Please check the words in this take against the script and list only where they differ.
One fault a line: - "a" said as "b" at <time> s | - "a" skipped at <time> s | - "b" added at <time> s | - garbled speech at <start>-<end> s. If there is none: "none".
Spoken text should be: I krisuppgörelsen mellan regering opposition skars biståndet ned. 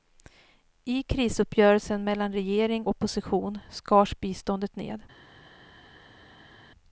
none